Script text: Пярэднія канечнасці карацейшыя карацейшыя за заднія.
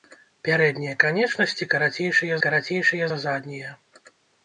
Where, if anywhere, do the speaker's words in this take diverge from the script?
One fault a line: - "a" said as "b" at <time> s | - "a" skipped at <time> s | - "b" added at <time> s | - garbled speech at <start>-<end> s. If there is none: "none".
none